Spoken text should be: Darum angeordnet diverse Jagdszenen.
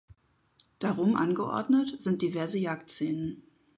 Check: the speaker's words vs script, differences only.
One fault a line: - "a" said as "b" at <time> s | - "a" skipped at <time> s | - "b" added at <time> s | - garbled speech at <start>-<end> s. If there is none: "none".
- "sind" added at 2.0 s